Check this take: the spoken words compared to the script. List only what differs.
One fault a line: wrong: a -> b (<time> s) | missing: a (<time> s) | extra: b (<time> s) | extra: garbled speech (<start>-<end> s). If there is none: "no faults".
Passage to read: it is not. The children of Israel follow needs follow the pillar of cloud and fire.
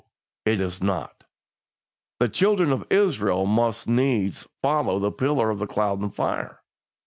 wrong: follow -> must (3.4 s)